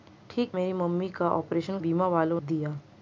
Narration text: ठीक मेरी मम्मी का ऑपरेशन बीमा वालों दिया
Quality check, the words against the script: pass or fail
pass